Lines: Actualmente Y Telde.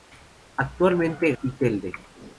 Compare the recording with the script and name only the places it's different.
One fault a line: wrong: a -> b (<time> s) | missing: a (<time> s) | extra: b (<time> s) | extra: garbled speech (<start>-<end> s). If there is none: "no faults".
no faults